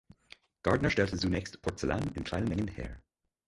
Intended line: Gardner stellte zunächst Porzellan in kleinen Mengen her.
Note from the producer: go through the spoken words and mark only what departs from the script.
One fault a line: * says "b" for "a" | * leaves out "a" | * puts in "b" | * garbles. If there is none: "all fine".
all fine